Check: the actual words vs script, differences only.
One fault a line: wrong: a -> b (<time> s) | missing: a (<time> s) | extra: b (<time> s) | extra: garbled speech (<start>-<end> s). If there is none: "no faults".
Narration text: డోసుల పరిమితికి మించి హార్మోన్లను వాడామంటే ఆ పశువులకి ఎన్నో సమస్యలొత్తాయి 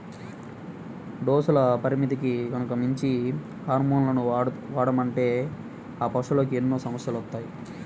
extra: గనక (2.5 s)